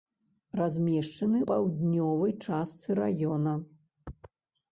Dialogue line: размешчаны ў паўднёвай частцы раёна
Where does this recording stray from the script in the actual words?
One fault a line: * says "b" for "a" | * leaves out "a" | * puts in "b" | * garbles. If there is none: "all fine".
* leaves out "ў"